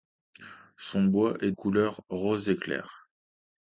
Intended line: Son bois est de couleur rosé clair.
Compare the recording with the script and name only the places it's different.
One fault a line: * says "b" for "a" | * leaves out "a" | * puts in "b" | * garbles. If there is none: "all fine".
* leaves out "de"